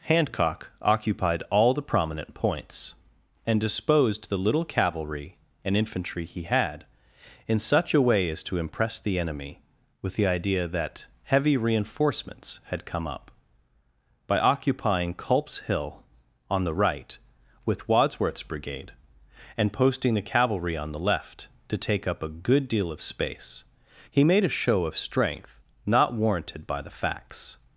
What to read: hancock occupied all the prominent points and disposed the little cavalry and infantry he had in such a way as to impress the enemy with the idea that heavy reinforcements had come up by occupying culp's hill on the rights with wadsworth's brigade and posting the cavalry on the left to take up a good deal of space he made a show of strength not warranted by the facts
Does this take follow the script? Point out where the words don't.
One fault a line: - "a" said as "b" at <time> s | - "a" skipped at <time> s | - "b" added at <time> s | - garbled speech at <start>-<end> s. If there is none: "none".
- "rights" said as "right" at 16.7 s